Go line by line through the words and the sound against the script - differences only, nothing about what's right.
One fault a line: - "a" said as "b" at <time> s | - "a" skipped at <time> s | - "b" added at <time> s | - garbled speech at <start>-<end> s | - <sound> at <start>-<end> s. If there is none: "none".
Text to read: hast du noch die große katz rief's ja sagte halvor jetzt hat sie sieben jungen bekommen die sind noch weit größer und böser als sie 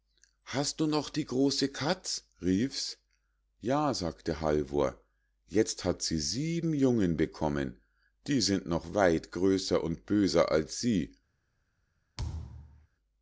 - thud at 12.2-12.9 s